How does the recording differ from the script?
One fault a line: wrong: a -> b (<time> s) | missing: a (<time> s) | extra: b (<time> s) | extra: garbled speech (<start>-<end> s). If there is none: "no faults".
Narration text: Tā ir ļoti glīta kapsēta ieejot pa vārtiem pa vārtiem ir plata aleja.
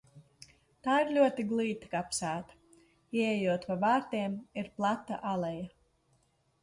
missing: pa vārtiem (4.4 s)